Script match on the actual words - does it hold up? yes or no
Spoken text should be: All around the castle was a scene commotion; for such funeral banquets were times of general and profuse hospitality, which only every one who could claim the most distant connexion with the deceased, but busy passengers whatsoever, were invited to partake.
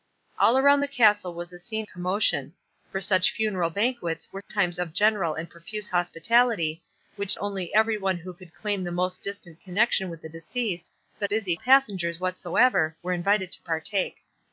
yes